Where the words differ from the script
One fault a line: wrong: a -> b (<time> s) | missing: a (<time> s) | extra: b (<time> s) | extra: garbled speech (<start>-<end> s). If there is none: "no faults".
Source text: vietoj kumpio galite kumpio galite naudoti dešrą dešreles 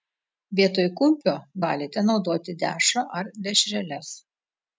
missing: kumpio galite (2.1 s)
extra: ar (3.2 s)